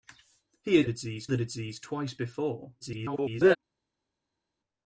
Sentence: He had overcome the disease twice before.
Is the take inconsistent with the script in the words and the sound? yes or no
yes